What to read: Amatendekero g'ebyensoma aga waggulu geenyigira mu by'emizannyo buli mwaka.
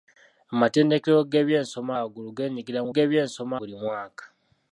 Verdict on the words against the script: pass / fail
fail